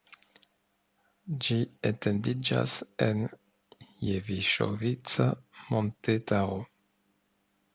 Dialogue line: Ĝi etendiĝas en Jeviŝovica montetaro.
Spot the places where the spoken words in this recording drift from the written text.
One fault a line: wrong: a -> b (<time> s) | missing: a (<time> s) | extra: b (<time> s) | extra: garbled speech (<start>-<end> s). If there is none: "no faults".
no faults